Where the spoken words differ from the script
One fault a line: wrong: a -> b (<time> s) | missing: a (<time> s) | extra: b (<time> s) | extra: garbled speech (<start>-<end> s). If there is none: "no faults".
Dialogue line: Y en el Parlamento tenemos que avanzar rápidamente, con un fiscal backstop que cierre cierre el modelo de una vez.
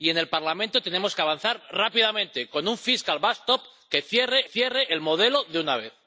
no faults